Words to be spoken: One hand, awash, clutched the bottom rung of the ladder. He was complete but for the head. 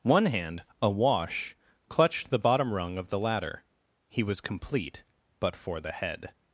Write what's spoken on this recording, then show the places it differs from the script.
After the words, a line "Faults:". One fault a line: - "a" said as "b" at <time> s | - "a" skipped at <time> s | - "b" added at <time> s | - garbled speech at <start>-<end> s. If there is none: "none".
One hand, awash, clutched the bottom rung of the ladder. He was complete but for the head.
Faults:
none